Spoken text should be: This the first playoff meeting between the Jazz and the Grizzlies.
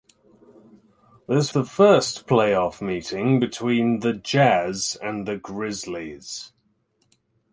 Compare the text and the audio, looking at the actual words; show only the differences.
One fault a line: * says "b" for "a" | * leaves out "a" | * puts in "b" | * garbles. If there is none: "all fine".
all fine